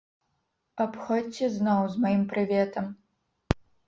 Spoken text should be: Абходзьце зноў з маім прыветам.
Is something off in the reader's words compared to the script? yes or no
no